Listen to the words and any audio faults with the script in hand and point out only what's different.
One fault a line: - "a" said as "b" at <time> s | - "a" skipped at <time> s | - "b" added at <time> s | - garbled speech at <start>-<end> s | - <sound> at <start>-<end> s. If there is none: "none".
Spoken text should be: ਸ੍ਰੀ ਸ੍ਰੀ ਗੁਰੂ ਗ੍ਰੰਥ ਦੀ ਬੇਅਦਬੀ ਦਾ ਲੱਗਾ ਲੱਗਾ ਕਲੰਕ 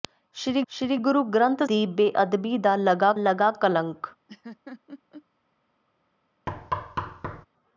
- laugh at 4.3-5.2 s
- thud at 6.5-7.5 s